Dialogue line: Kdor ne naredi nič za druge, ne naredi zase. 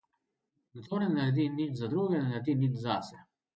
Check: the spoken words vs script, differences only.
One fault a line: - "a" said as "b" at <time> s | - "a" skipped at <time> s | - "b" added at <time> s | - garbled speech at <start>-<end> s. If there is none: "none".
- "nič" added at 2.5 s